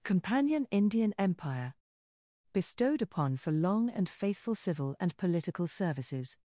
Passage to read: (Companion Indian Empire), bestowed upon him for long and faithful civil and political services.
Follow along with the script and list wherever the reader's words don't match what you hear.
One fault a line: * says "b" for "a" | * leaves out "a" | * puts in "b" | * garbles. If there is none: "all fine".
* leaves out "him"